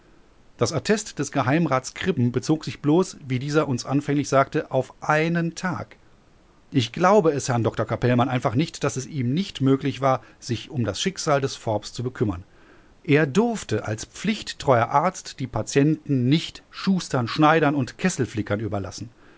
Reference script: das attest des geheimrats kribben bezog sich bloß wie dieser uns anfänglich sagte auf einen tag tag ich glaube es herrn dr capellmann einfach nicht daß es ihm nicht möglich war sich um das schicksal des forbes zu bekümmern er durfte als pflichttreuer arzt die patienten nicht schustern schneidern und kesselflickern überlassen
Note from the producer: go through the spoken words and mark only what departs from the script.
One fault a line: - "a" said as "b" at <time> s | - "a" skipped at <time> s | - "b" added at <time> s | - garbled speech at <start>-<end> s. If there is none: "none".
- "tag" skipped at 6.0 s